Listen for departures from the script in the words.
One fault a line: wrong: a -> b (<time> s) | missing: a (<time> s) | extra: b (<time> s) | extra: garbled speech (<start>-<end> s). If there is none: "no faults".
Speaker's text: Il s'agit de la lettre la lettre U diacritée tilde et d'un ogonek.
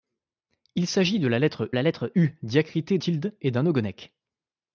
no faults